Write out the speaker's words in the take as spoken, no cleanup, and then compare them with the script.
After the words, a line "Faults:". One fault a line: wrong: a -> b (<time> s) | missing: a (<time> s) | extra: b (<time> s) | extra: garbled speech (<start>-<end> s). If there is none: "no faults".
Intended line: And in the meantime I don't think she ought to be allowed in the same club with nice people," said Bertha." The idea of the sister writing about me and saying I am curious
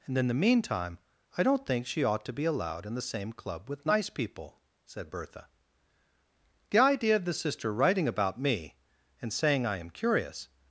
And in the meantime I don't think she ought to be allowed in the same club with nice people," said Bertha." The idea of the sister writing about me and saying I am curious
Faults:
no faults